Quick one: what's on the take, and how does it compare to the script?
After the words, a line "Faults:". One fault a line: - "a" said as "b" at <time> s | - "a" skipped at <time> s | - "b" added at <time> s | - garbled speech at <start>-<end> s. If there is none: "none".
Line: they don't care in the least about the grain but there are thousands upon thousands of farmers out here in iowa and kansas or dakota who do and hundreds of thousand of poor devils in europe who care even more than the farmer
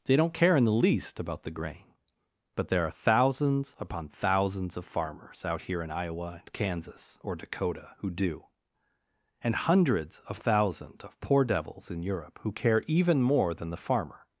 they don't care in the least about the grain but there are thousands upon thousands of farmers out here in iowa and kansas or dakota who do and hundreds of thousands of poor devils in europe who care even more than the farmer
Faults:
- "thousand" said as "thousands" at 10.4 s